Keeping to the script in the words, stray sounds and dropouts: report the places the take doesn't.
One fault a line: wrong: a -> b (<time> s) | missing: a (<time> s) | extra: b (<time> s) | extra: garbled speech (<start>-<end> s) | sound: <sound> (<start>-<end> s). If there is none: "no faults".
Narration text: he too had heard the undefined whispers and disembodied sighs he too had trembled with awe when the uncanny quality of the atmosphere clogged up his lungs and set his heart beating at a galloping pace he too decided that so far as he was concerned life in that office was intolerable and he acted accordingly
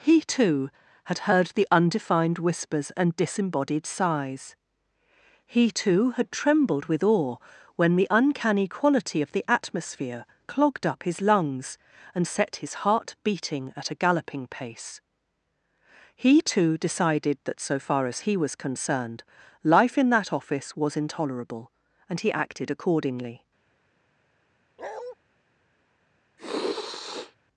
sound: bark (24.8-25.2 s)
sound: sniff (26.4-27.4 s)